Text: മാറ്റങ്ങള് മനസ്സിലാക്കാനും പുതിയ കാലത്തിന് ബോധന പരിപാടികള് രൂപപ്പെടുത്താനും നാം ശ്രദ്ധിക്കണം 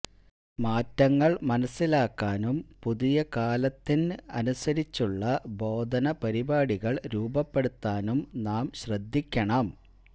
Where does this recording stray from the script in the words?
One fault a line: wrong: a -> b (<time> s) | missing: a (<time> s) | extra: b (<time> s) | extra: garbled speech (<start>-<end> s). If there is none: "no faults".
extra: അനുസരിച്ചുള്ള (4.3 s)